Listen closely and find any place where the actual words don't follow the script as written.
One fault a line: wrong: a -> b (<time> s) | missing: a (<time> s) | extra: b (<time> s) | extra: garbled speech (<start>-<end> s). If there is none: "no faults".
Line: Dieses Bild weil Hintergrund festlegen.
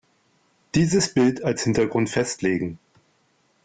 wrong: weil -> als (1.4 s)